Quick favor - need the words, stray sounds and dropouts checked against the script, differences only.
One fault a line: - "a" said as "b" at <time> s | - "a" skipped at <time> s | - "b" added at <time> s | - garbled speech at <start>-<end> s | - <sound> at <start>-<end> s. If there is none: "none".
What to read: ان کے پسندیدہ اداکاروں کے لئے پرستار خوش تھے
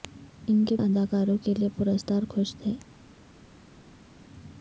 - "پسندیدہ" skipped at 0.8 s